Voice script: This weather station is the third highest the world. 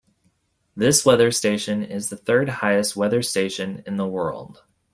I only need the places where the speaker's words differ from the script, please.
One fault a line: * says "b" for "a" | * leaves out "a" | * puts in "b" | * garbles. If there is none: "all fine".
* puts in "weather station in"